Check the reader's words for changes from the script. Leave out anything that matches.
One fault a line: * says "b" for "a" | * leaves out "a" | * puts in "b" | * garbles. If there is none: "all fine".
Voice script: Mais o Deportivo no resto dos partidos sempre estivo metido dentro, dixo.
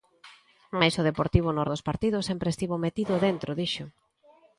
* leaves out "resto"